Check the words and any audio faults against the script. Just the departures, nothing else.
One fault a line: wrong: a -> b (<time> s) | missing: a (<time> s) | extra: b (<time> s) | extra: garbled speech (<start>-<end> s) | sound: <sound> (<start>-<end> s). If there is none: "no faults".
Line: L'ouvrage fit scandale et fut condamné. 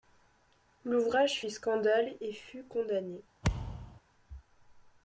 sound: thud (3.4-4.0 s)